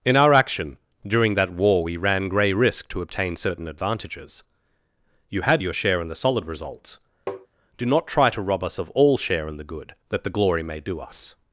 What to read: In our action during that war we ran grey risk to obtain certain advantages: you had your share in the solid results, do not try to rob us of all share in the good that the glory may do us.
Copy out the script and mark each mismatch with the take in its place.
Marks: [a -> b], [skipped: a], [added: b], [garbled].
In our action during that war we ran grey risk to obtain certain advantages: you had your share in the solid results, do not try to rob us of all share in the good that the glory may do us.